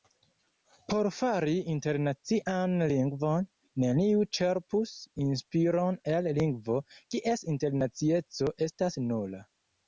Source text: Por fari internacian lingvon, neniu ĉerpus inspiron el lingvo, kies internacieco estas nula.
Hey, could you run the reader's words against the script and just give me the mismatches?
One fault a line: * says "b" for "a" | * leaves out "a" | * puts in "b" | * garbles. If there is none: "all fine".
all fine